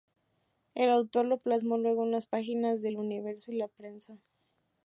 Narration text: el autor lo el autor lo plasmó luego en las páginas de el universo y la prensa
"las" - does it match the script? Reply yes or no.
yes